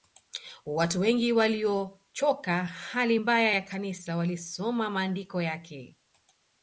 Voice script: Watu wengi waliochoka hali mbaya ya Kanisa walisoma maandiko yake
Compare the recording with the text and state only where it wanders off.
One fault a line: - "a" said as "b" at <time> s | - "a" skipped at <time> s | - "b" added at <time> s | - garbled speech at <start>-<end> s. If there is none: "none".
none